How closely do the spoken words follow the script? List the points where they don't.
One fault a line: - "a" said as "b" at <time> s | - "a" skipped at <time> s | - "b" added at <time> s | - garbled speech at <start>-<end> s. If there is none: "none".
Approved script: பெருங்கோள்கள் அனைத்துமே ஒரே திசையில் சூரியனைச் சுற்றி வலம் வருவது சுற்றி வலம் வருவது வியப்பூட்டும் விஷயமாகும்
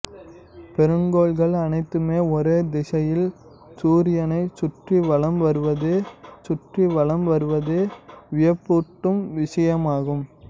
none